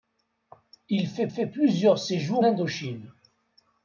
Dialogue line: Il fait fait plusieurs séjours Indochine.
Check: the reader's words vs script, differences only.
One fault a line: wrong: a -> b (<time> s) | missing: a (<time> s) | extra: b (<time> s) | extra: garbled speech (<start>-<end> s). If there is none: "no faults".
no faults